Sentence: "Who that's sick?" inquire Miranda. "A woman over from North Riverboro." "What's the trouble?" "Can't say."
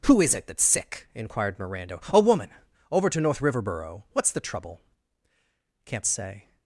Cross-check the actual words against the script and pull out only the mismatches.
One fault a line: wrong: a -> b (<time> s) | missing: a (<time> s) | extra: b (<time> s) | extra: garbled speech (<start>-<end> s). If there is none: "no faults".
extra: is it (0.2 s)
wrong: inquire -> inquired (1.1 s)
wrong: from -> to (3.1 s)